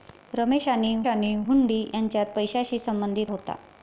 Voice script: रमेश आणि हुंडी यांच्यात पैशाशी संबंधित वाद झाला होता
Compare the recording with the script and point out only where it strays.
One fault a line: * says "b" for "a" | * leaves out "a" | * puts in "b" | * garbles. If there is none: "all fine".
* puts in "आणि"
* leaves out "वाद झाला"